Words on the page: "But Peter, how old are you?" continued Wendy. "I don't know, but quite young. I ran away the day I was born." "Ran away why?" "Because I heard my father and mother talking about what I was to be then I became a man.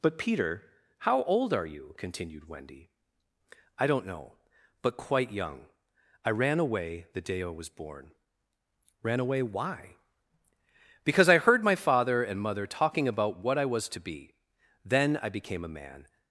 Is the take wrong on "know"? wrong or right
right